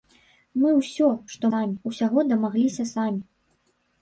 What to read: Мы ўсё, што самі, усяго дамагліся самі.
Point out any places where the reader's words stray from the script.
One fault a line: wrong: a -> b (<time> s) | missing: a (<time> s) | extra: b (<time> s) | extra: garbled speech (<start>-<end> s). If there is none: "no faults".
no faults